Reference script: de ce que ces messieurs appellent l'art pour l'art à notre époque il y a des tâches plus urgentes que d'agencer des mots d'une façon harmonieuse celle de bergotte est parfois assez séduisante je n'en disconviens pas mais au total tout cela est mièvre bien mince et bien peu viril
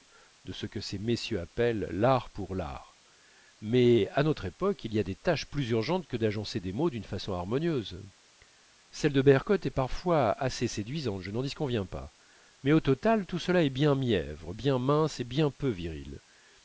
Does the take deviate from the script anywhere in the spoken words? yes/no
yes